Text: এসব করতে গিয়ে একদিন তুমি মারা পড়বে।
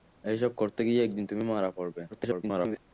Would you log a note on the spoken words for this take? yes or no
yes